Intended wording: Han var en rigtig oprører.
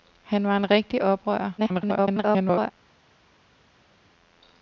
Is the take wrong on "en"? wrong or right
right